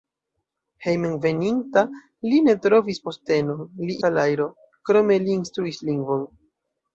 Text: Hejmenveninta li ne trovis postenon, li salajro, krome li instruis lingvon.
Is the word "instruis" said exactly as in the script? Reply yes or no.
yes